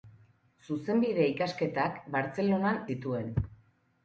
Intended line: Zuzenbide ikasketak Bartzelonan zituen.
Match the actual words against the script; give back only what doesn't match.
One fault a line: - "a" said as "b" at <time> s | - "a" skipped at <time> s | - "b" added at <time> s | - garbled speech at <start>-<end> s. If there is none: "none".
none